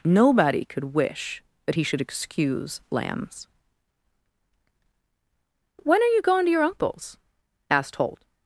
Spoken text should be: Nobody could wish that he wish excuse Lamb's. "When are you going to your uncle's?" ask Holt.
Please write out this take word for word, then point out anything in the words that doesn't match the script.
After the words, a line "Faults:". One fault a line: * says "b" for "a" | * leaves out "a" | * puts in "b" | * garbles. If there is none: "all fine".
Nobody could wish that he should excuse Lamb's. "When are you going to your uncle's?" asked Holt.
Faults:
* says "should" for "wish"
* says "asked" for "ask"